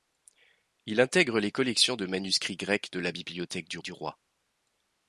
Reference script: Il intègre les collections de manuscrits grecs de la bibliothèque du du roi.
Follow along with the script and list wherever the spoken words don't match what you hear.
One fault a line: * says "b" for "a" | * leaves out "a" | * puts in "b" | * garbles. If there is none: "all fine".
all fine